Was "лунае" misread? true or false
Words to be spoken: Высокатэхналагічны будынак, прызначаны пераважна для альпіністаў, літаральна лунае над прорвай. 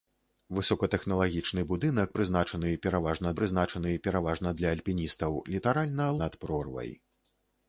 true